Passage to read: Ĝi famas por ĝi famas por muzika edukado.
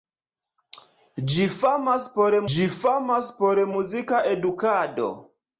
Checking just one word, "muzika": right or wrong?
right